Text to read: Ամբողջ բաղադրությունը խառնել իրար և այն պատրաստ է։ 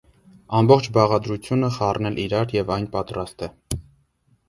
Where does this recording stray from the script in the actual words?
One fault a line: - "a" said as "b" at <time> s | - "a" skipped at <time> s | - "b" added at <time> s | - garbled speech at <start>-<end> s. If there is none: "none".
none